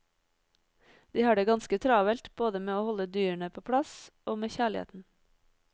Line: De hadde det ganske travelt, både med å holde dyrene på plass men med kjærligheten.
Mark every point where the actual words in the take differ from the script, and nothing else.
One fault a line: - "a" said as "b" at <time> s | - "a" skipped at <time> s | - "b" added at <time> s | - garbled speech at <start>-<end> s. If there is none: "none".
- "hadde" said as "har" at 1.2 s
- "men" said as "og" at 4.2 s